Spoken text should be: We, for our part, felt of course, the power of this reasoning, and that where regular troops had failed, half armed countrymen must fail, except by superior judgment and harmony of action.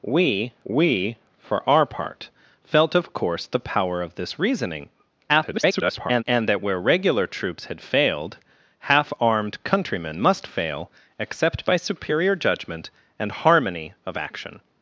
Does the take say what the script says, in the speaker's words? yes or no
no